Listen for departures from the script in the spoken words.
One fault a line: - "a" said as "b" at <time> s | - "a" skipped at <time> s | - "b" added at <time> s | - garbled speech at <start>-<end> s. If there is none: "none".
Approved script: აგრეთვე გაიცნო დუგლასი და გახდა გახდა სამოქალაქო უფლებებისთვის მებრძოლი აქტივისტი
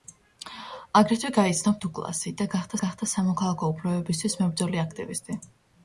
none